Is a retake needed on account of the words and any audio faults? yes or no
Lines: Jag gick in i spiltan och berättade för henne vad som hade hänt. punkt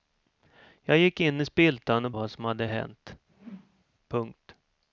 yes